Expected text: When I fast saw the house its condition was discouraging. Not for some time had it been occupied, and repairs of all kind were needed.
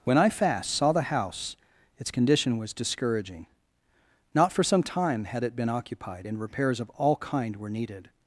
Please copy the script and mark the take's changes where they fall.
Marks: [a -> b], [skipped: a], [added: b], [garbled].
When I fast saw the house its condition was discouraging. Not for some time had it been occupied, and repairs of all kind were needed.